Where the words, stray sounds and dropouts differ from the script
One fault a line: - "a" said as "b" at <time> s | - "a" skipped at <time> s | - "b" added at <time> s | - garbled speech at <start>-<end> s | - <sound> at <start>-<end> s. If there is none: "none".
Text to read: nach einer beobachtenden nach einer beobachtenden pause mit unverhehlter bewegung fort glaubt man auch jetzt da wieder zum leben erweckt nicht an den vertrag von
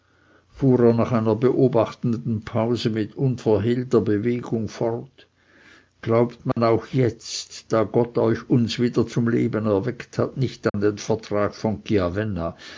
- "nach einer beobachtenden" skipped at 2.4 s
- dropout at 6.5-6.6 s
- "gott euch uns" added at 7.8 s
- "hat" added at 10.2 s
- dropout at 10.7-10.7 s